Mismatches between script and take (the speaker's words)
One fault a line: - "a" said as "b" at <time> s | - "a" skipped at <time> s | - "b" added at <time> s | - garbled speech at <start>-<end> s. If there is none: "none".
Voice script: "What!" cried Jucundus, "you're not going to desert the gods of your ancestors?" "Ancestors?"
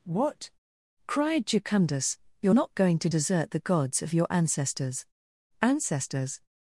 none